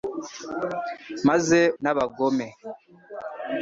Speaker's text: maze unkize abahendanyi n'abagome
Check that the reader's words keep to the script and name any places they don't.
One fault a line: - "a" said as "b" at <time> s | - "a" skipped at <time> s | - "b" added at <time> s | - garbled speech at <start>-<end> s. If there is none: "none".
- "unkize abahendanyi" skipped at 1.6 s